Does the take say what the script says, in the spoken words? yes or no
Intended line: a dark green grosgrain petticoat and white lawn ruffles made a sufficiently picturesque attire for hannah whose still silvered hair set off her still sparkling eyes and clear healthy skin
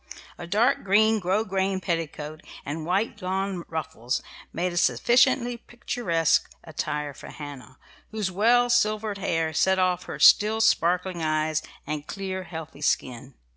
no